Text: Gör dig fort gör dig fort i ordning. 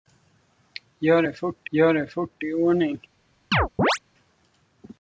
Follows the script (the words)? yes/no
yes